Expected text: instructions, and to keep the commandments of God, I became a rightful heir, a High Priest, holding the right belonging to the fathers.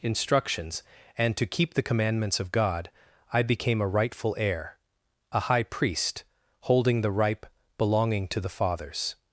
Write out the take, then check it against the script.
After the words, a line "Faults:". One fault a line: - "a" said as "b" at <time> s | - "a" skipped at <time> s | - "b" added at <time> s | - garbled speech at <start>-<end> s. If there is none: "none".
instructions, and to keep the commandments of God, I became a rightful heir, a High Priest, holding the ripe belonging to the fathers.
Faults:
- "right" said as "ripe" at 7.1 s